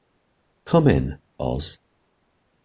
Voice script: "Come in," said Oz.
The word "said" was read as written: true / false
false